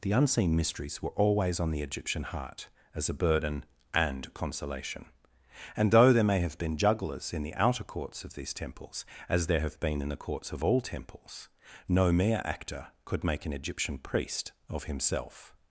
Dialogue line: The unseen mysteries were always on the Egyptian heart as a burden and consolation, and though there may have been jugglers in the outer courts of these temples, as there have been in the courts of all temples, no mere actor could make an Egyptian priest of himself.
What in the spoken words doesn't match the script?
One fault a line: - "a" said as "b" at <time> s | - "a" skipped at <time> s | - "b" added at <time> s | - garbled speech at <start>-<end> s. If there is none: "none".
none